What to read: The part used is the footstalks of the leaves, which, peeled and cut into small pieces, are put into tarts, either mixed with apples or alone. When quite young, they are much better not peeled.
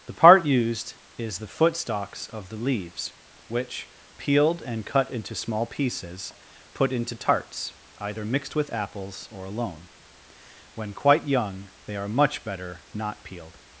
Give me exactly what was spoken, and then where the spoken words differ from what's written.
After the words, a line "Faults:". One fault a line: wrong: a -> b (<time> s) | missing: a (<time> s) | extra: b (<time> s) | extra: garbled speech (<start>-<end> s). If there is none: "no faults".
The part used is the footstalks of the leaves, which, peeled and cut into small pieces, put into tarts, either mixed with apples or alone. When quite young, they are much better not peeled.
Faults:
missing: are (6.3 s)